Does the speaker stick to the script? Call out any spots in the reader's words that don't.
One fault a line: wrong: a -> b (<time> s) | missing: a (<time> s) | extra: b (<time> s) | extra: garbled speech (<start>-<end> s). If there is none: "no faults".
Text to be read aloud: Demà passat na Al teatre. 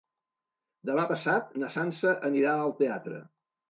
extra: Sança anirà (1.7 s)